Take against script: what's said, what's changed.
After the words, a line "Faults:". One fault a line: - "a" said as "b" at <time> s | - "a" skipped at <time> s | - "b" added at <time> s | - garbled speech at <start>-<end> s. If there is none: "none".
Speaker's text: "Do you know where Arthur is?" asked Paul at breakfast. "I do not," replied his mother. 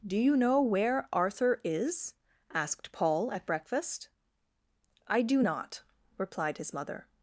"Do you know where Arthur is?" asked Paul at breakfast. "I do not," replied his mother.
Faults:
none